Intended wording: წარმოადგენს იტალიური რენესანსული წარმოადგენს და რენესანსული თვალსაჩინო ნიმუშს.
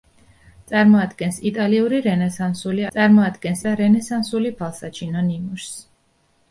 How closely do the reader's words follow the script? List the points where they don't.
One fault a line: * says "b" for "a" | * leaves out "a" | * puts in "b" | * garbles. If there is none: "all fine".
all fine